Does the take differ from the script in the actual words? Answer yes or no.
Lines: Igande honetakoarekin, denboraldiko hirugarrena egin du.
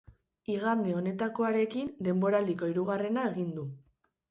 no